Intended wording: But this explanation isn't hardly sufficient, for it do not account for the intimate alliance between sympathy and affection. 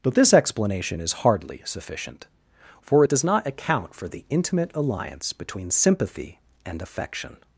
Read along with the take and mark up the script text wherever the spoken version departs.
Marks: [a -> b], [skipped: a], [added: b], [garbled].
But this explanation [isn't -> is] hardly sufficient, for it [do -> does] not account for the intimate alliance between sympathy and affection.